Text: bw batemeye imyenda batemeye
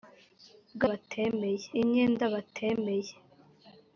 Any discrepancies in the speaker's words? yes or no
no